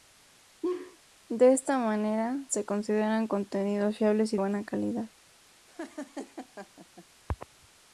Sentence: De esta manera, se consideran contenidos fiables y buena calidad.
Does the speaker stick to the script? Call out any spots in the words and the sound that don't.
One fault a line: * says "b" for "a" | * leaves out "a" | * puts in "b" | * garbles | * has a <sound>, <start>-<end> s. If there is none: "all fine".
* has a laugh, 0.6-1.0 s
* has a laugh, 5.7-7.1 s